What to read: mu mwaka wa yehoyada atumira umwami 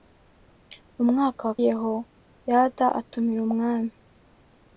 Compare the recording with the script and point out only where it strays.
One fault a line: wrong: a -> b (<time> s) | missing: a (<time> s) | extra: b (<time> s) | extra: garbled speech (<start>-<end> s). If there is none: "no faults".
no faults